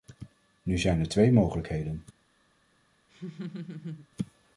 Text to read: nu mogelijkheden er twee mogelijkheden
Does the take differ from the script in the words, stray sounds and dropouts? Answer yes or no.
yes